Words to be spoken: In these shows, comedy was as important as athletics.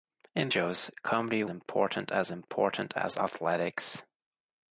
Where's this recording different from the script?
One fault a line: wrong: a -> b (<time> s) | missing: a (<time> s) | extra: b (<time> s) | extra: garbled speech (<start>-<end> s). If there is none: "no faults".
missing: these (0.5 s)
wrong: was -> important (1.5 s)